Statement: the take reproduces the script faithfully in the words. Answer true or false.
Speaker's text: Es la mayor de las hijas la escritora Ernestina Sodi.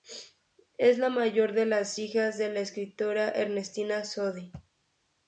false